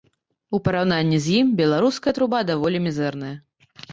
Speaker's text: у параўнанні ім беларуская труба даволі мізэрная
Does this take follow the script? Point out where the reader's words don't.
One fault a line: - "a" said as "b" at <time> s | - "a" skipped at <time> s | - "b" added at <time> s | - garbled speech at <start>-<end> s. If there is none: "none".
- "з" added at 1.2 s